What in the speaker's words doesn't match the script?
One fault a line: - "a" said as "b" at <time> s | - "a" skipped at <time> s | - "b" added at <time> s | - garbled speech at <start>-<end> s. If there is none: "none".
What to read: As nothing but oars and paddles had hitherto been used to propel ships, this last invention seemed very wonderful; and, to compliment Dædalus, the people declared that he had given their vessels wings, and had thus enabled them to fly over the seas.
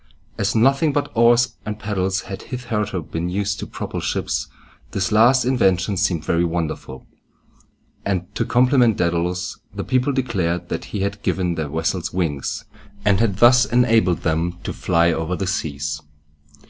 none